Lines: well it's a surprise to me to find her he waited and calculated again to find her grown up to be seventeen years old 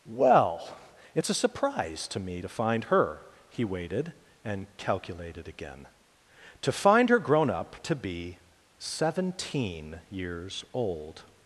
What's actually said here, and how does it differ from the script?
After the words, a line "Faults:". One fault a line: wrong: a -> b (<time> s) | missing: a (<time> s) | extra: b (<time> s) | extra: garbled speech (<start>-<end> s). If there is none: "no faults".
well it's a surprise to me to find her he waited and calculated again to find her grown up to be seventeen years old
Faults:
no faults